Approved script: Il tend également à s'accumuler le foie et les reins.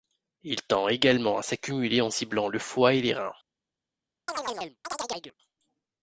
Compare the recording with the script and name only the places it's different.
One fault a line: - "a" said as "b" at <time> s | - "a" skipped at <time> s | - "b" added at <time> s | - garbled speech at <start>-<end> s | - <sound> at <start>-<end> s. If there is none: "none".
- "en ciblant" added at 2.0 s
- chirp at 4.3-5.3 s